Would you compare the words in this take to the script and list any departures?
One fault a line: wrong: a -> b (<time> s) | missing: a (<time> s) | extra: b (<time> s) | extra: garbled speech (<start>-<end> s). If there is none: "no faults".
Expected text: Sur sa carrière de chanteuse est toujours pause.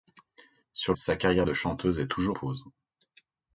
no faults